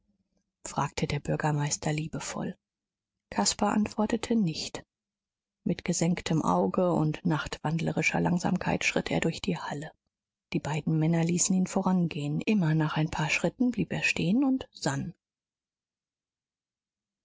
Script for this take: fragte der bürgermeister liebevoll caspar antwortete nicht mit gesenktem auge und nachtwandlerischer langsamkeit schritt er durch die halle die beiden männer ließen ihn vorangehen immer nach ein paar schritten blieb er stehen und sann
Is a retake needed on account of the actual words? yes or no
no